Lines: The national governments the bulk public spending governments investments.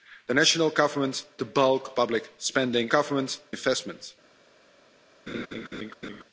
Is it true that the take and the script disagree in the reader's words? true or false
false